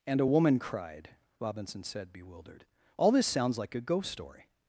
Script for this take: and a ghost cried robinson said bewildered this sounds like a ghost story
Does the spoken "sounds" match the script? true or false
true